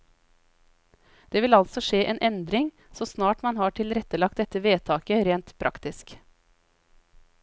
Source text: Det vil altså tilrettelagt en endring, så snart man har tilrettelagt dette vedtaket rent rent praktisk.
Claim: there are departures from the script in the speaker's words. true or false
true